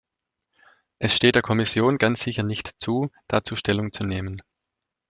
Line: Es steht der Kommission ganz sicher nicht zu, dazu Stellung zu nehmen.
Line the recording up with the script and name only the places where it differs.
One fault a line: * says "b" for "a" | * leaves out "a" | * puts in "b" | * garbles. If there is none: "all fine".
all fine